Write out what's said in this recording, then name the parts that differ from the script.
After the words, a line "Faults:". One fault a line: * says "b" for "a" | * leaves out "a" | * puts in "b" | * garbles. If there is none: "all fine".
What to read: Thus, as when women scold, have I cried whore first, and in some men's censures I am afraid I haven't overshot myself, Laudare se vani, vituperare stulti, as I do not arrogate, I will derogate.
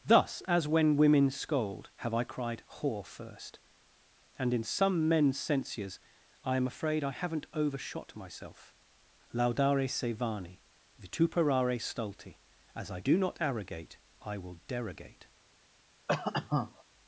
Thus, as when women scold, have I cried whore first, and in some men's censures I am afraid I haven't overshot myself, Laudare se vani, vituperare stulti, as I do not arrogate, I will derogate.
Faults:
all fine